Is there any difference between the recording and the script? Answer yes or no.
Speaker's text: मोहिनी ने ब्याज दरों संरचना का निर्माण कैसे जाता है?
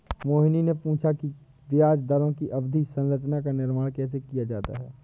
yes